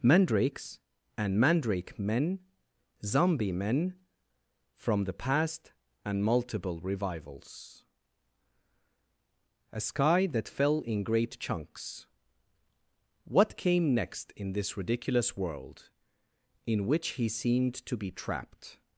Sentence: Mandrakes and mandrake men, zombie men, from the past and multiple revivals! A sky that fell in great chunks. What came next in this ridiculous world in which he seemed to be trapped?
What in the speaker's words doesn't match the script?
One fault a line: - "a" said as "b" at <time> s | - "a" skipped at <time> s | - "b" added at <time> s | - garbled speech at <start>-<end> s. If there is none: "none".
none